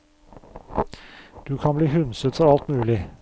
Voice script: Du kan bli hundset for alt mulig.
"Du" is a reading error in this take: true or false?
false